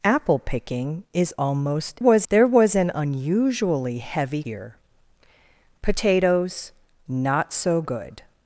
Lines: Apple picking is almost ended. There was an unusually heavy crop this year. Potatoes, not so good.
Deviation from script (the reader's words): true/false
true